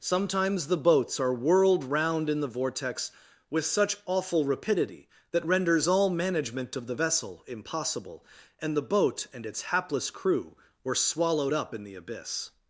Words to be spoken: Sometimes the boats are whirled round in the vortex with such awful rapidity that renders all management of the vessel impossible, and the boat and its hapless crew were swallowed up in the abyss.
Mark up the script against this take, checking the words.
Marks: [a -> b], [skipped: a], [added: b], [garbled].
Sometimes the boats are whirled round in the vortex with such awful rapidity that renders all management of the vessel impossible, and the boat and its hapless crew were swallowed up in the abyss.